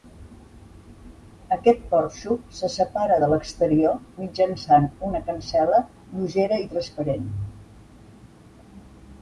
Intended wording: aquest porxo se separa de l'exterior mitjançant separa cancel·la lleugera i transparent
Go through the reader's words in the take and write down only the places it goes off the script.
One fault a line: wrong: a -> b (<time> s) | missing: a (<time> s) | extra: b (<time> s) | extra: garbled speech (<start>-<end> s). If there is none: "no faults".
wrong: separa -> una (5.1 s)